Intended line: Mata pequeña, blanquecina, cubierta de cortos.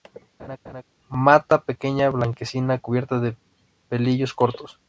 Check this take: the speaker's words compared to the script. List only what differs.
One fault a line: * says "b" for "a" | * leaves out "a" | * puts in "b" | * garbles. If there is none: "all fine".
* puts in "pelillos"